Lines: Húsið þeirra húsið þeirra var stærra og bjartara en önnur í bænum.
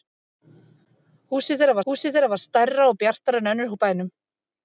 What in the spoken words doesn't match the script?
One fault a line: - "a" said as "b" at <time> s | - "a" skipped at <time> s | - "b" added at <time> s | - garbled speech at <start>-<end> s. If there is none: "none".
none